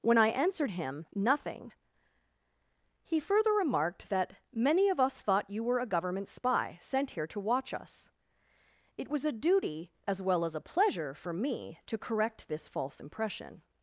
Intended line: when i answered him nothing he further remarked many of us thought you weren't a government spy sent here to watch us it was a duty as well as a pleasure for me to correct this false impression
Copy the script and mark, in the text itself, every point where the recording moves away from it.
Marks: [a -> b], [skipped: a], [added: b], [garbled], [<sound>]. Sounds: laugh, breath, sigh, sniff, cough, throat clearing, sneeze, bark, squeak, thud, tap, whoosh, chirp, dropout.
when i answered him nothing he further remarked [added: that] many of us thought you [weren't -> were] a government spy sent here to watch us it was a duty as well as a pleasure for me to correct this false impression